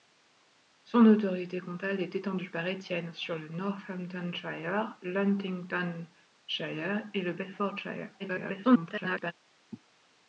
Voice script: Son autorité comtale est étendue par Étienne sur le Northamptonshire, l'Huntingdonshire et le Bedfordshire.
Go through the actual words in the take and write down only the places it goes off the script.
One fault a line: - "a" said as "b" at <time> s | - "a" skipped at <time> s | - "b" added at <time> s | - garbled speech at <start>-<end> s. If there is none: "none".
- garbled speech at 8.2-9.3 s